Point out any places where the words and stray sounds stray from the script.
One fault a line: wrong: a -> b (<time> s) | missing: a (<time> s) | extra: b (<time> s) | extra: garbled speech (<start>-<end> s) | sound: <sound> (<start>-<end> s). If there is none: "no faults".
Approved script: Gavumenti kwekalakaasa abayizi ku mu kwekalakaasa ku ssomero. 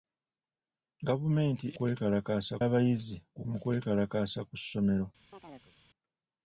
sound: chirp (5.3-5.7 s)